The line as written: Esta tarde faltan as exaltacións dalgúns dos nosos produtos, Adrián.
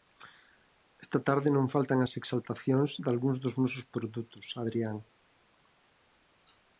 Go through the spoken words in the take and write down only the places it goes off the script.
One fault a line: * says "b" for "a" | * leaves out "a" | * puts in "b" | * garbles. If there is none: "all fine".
* puts in "non"